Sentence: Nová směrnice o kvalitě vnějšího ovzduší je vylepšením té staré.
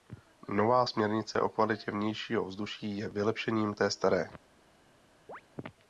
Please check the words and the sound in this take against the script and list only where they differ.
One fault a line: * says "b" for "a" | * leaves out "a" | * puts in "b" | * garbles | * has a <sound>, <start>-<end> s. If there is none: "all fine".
* has a chirp, 5.3-5.4 s